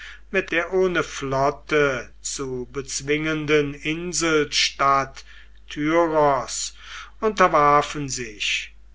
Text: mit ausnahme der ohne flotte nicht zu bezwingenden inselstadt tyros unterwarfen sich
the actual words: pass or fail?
fail